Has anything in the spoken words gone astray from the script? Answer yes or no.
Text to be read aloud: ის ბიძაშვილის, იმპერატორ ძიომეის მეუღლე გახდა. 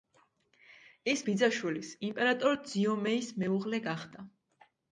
no